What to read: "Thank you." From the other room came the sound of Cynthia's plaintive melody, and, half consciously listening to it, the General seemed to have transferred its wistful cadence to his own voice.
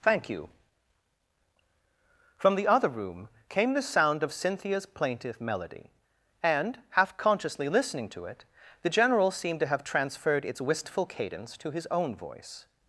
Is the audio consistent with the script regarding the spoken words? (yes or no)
yes